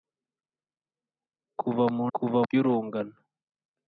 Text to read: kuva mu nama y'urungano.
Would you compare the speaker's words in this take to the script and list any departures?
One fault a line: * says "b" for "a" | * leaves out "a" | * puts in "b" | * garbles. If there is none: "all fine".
* says "kuva" for "nama"